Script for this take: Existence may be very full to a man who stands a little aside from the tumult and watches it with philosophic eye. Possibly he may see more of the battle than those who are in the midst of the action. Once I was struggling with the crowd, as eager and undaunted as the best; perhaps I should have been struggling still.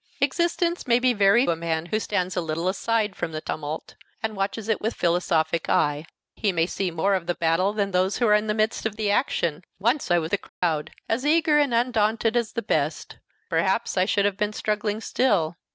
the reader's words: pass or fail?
fail